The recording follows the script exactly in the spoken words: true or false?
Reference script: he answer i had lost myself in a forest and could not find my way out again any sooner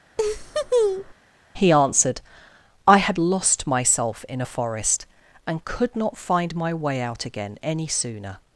false